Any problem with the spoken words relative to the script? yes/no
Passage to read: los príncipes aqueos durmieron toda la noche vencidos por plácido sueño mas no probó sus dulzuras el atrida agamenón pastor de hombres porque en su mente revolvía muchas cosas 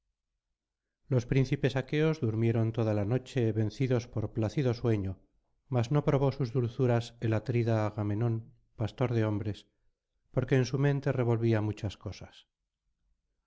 no